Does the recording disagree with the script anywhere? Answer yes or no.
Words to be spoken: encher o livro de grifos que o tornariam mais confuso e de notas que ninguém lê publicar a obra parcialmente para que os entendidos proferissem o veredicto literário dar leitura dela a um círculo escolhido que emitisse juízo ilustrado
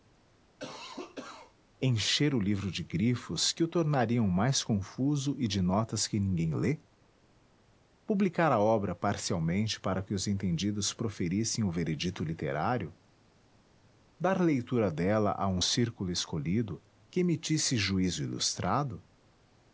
no